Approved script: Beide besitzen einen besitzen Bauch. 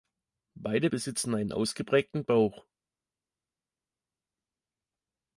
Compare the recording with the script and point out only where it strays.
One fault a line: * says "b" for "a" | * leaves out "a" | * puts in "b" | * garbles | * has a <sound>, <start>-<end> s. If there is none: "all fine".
* says "ausgeprägten" for "besitzen"